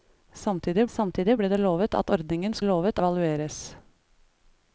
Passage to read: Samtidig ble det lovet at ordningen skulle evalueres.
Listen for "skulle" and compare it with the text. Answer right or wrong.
wrong